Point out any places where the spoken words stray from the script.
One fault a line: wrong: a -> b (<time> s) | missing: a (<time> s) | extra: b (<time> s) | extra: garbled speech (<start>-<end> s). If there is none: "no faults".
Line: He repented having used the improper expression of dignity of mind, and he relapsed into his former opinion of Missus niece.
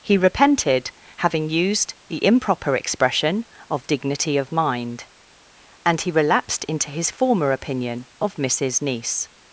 no faults